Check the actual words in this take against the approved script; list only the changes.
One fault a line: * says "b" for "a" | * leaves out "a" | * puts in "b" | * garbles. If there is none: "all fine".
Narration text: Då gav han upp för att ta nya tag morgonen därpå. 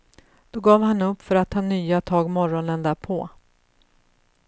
all fine